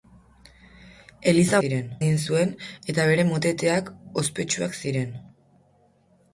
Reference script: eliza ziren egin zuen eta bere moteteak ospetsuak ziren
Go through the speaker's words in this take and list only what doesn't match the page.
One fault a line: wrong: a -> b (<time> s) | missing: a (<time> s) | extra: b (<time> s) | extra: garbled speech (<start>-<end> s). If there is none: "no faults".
no faults